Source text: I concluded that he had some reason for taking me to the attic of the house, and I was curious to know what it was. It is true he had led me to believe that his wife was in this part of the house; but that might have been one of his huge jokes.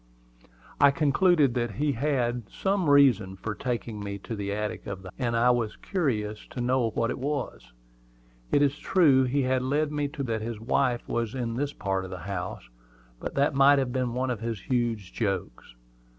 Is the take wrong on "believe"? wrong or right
wrong